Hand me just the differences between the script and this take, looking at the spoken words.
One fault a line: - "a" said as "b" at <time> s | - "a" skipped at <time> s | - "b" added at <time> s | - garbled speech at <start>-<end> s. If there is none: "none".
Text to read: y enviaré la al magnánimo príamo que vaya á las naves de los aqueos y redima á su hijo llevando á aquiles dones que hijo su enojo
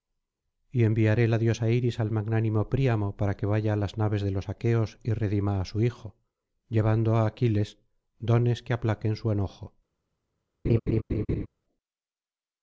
- "diosa iris" added at 1.4 s
- "para" added at 3.2 s
- "hijo" said as "aplaquen" at 8.7 s